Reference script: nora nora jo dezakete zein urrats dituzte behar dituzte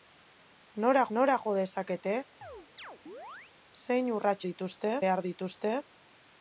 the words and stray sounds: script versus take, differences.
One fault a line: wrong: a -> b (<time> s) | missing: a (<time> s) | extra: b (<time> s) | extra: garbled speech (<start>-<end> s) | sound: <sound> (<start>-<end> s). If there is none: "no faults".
sound: chirp (2.4-3.5 s)